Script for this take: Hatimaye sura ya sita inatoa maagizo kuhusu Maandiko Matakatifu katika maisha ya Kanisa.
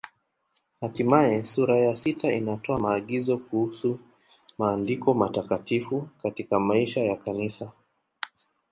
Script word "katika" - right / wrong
right